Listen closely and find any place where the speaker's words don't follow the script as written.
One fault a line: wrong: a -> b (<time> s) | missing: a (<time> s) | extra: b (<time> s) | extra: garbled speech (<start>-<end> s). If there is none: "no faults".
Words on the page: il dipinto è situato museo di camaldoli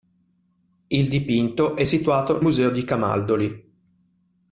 no faults